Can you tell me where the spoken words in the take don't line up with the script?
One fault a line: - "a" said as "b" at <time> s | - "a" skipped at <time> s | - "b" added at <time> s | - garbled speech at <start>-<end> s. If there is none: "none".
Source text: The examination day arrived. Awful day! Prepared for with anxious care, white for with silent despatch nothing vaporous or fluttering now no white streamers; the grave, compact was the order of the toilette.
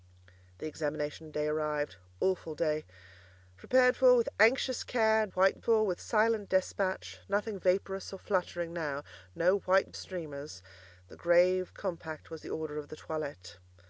none